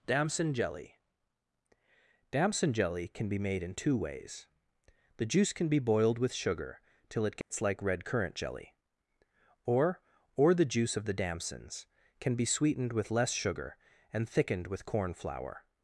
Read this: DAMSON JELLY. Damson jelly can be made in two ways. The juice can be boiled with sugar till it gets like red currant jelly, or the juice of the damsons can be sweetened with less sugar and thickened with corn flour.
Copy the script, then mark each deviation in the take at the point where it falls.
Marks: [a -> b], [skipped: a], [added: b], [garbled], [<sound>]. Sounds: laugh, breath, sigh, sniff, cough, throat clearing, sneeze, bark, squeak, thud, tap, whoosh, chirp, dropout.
DAMSON JELLY. Damson jelly can be made in two ways. The juice can be boiled with sugar till it gets [dropout] like red currant jelly, or [added: or] the juice of the damsons can be sweetened with less sugar and thickened with corn flour.